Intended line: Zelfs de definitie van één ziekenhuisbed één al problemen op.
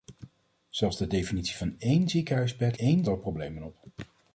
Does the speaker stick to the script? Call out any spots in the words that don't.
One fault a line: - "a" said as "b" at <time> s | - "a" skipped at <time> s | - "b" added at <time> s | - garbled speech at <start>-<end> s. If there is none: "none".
none